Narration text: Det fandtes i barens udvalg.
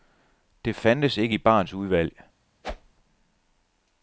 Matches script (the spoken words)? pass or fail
fail